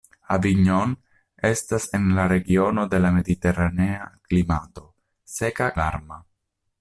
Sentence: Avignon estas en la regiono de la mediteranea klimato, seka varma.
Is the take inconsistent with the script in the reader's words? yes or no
no